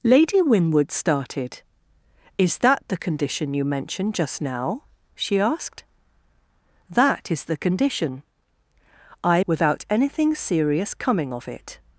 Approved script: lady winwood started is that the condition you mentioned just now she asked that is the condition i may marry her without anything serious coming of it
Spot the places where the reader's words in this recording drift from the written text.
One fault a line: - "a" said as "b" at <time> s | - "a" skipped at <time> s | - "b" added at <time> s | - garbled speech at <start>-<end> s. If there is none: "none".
- "may marry her" skipped at 9.4 s